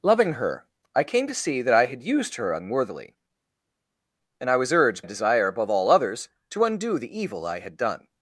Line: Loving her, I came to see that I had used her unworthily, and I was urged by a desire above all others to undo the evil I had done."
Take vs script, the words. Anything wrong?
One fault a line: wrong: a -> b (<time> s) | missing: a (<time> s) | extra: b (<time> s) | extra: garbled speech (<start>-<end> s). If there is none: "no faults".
missing: by (5.0 s)